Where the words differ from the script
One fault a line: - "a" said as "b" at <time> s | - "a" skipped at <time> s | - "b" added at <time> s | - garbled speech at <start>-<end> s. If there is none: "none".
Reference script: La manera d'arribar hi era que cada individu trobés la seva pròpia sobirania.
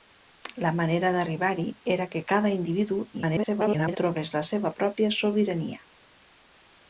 - garbled speech at 3.1-4.0 s